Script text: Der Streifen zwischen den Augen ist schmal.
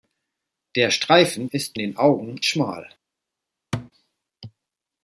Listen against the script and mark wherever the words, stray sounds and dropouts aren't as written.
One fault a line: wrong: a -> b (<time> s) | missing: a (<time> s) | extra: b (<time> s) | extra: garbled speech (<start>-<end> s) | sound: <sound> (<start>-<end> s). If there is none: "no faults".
wrong: zwischen -> ist (1.5 s)
missing: ist (2.4 s)
sound: thud (3.7-3.9 s)